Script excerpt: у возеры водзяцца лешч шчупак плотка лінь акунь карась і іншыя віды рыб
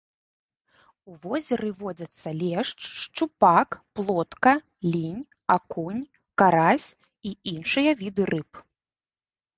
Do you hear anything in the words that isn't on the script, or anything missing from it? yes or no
no